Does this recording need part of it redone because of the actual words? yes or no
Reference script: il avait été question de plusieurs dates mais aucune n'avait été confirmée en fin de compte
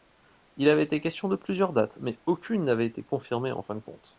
no